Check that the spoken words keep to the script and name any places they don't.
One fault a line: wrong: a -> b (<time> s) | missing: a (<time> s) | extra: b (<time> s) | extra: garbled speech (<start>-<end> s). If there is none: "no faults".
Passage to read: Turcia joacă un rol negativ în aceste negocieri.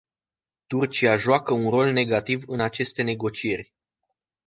no faults